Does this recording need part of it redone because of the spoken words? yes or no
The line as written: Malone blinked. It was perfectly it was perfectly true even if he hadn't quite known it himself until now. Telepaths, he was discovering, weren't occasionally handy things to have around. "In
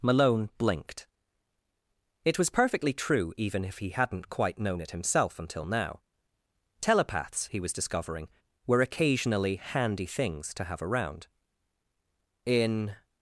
yes